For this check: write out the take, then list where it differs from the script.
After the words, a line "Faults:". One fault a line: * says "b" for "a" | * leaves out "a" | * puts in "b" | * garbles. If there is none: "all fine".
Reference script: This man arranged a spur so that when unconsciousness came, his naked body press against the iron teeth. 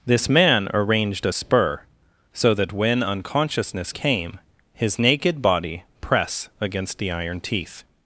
This man arranged a spur so that when unconsciousness came, his naked body press against the iron teeth.
Faults:
all fine